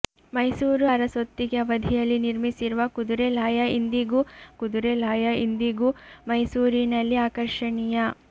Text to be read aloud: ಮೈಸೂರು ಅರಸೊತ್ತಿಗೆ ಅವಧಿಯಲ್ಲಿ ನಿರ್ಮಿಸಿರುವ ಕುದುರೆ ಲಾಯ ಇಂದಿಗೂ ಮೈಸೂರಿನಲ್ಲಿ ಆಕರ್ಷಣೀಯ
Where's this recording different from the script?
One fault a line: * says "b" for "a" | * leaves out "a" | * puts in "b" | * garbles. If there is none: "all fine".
* puts in "ಕುದುರೆ ಲಾಯ ಇಂದಿಗೂ"